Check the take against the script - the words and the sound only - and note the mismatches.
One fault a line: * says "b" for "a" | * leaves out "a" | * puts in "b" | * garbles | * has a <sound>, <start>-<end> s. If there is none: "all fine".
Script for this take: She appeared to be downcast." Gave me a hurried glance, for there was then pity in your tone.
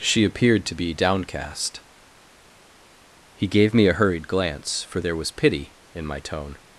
* puts in "He"
* leaves out "then"
* says "my" for "your"